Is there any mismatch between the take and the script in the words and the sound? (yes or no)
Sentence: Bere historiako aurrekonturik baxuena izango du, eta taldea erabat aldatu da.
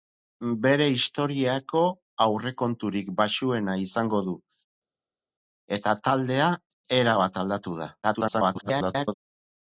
yes